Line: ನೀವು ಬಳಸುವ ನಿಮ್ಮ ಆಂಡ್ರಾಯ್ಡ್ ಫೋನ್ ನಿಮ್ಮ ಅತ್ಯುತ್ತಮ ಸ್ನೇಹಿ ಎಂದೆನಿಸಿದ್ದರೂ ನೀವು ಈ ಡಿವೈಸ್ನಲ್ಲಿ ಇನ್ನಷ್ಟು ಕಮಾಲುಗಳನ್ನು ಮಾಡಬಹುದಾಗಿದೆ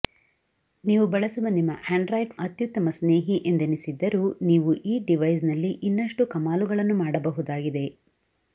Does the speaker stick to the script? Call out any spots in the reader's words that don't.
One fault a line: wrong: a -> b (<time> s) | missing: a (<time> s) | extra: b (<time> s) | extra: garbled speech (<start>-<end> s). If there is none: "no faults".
missing: ಫೋನ್ ನಿಮ್ಮ (2.3 s)